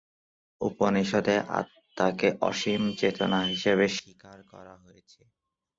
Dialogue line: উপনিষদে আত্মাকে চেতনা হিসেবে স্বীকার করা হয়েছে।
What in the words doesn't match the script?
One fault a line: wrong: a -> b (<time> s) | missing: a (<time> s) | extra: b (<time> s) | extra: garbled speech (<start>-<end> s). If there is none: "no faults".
extra: অসীম (2.5 s)